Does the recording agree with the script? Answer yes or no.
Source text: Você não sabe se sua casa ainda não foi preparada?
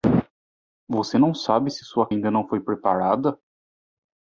no